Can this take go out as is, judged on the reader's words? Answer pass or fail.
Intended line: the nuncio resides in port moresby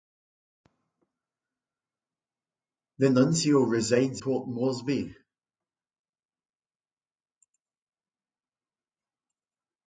fail